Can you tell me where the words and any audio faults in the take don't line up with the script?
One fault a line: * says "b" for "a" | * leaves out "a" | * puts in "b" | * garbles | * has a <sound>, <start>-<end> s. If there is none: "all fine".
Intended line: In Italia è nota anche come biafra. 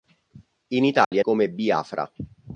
* has a dropout, 1.0-1.1 s
* leaves out "nota anche"